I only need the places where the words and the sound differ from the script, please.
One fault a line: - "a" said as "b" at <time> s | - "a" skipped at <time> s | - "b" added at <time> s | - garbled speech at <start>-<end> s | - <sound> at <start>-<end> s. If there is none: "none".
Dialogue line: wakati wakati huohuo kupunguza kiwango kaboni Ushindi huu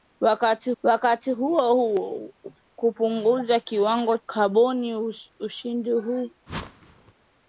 - whoosh at 6.5-7.1 s